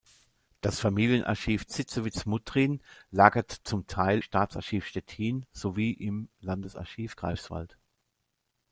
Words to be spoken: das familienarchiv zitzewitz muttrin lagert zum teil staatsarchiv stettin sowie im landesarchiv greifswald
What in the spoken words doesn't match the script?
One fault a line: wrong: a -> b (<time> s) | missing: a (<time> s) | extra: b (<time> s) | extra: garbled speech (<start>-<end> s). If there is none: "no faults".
no faults